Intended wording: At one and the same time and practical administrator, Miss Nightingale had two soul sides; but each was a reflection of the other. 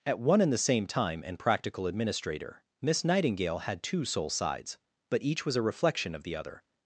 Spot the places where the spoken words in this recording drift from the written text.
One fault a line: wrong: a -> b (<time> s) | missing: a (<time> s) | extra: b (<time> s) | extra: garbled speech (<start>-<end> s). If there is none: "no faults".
no faults